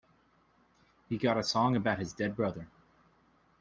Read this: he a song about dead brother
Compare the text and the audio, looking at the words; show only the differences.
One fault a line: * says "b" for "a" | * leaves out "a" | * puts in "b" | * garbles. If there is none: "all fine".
* puts in "got"
* puts in "his"